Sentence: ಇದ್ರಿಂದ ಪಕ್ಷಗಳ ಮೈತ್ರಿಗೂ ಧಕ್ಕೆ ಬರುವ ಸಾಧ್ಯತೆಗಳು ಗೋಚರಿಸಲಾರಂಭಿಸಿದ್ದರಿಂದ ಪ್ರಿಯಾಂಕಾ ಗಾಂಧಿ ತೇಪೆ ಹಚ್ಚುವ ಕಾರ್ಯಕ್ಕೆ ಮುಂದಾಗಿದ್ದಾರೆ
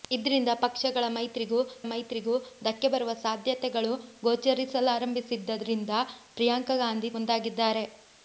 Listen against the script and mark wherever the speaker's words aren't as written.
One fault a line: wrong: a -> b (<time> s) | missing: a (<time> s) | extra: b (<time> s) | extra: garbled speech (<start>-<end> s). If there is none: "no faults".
extra: ಮೈತ್ರಿಗೂ (1.8 s)
missing: ತೇಪೆ ಹಚ್ಚುವ ಕಾರ್ಯಕ್ಕೆ (7.1 s)